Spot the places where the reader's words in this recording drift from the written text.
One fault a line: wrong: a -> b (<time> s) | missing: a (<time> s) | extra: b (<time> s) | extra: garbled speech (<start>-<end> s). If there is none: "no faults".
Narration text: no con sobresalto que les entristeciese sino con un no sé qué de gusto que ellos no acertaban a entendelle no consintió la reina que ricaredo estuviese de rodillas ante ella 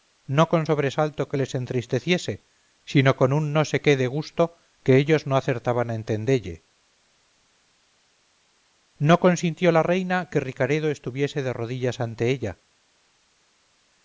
no faults